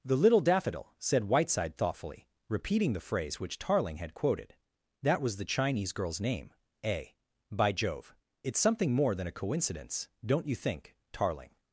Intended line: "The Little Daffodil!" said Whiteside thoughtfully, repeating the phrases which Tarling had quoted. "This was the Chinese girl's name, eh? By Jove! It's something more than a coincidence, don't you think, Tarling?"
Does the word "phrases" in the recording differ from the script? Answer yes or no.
yes